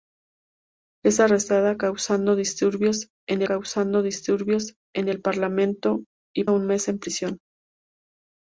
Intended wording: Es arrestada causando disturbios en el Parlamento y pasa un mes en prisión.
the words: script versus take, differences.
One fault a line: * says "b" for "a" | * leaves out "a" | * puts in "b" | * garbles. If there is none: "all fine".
* puts in "causando disturbios en"
* leaves out "pasa"